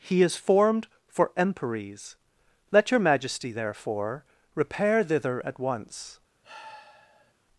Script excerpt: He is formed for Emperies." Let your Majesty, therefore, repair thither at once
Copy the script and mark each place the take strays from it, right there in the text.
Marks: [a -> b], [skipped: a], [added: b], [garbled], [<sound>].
He is formed for Emperies." Let your Majesty, therefore, repair thither at once [sigh]